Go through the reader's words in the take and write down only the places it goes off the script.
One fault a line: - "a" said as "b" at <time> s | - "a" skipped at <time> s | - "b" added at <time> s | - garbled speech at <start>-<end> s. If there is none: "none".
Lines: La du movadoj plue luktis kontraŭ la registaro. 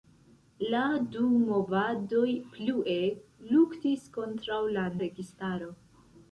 none